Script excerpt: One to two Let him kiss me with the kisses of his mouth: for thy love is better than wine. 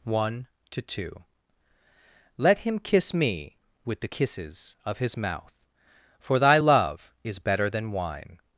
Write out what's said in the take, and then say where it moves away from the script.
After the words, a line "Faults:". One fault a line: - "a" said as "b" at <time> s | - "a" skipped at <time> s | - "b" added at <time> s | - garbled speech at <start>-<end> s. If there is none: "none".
One to two Let him kiss me with the kisses of his mouth: for thy love is better than wine.
Faults:
none